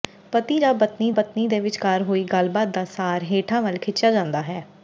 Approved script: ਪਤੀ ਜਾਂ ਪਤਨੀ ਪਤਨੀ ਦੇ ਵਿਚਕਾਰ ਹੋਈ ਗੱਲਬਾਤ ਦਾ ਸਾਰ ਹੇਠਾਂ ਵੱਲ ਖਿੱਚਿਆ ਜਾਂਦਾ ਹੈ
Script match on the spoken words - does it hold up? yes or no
yes